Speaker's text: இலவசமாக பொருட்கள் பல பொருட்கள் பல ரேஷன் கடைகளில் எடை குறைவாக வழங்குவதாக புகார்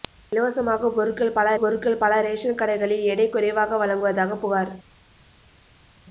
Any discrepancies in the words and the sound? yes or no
no